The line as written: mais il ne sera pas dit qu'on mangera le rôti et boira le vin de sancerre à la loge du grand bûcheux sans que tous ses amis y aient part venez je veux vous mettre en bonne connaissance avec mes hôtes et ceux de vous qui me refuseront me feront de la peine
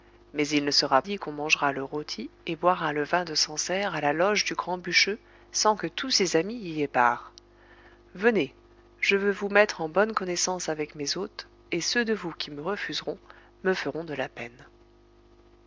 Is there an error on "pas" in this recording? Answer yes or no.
yes